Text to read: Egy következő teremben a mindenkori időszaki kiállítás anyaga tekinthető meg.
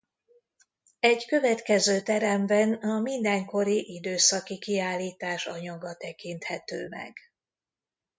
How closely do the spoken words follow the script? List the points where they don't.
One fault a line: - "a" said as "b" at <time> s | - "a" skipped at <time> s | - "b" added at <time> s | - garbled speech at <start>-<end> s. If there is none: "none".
none